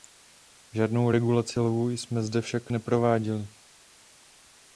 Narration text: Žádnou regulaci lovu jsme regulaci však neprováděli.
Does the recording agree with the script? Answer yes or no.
no